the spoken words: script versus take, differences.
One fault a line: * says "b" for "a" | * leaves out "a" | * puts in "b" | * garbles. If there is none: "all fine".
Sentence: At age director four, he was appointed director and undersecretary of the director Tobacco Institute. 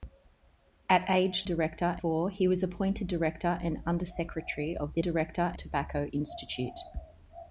all fine